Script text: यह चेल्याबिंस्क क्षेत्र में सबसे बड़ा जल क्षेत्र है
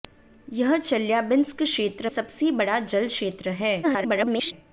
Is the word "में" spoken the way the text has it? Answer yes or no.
no